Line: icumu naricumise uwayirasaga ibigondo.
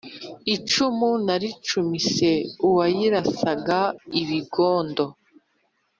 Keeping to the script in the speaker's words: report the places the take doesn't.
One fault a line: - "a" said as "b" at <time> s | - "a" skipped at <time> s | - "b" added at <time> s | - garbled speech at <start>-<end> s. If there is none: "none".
none